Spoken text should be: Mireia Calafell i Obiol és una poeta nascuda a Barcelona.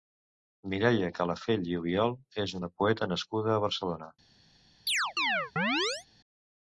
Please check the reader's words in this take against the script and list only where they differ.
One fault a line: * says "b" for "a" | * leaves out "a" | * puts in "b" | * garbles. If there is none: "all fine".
all fine